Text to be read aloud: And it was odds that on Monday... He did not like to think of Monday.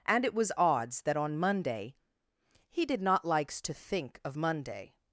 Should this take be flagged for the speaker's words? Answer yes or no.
yes